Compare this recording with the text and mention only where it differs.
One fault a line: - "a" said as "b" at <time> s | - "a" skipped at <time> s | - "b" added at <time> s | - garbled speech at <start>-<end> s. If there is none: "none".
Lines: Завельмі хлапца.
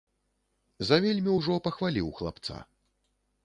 - "ўжо пахваліў" added at 1.4 s